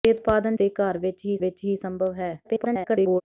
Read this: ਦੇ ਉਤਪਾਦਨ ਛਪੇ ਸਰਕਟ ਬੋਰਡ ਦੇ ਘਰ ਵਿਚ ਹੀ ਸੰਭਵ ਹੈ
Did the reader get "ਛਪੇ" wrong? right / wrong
wrong